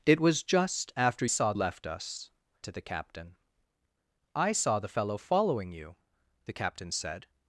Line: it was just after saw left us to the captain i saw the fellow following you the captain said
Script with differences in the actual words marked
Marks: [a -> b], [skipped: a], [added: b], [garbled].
it was just after saw left us to the captain i saw the fellow following you the captain said